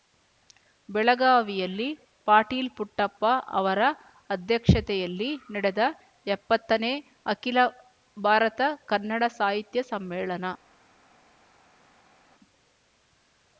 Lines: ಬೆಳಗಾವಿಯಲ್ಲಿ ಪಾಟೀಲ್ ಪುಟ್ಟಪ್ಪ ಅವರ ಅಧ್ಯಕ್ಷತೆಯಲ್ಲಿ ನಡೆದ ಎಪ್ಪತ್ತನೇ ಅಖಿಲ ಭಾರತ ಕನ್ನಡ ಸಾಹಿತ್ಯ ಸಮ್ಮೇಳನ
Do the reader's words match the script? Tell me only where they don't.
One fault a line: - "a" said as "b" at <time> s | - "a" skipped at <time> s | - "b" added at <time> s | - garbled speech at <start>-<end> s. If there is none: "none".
none